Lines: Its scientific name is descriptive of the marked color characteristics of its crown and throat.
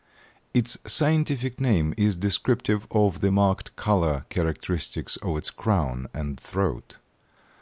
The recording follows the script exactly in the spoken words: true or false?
true